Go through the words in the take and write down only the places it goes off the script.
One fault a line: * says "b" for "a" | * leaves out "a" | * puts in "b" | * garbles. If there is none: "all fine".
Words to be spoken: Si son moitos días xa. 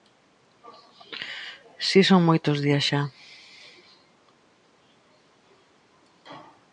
all fine